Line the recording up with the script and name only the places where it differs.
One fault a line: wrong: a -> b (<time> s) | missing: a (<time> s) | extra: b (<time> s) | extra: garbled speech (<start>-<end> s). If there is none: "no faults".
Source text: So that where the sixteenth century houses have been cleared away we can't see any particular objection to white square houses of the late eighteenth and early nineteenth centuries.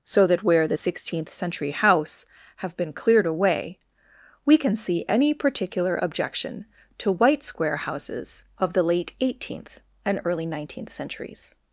wrong: houses -> house (1.7 s)
wrong: can't -> can (4.6 s)